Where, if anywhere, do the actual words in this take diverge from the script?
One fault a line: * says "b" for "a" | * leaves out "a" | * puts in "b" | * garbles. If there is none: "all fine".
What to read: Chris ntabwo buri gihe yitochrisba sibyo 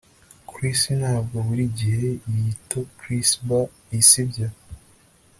all fine